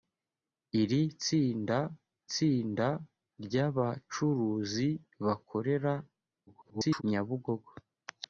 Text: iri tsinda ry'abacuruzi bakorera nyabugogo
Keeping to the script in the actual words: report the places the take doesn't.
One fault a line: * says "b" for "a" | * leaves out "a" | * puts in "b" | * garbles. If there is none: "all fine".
* puts in "tsinda"
* garbles